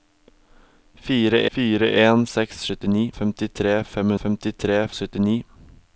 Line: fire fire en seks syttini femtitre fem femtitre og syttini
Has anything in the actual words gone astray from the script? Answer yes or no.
no